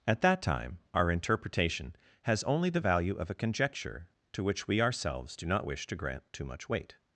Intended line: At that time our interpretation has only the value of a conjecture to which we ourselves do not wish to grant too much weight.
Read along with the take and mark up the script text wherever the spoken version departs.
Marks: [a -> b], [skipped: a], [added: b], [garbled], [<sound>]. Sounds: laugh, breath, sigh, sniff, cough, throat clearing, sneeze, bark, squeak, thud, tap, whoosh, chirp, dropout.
At that time our interpretation has only the value of a conjecture to which we ourselves do not wish to grant too much weight.